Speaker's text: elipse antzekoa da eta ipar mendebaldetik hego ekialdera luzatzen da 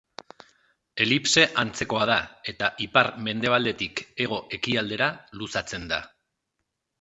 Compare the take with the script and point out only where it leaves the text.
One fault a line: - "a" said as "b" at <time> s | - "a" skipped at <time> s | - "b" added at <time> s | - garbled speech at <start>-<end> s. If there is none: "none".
none